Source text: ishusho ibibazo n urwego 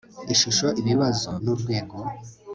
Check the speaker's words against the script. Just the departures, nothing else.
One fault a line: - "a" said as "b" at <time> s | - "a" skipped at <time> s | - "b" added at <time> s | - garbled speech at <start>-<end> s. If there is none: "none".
none